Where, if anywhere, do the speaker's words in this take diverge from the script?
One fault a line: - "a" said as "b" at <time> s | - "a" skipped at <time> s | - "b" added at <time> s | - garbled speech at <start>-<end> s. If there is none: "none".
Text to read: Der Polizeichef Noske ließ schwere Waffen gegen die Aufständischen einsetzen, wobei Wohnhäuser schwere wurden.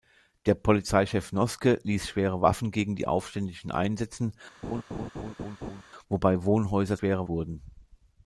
none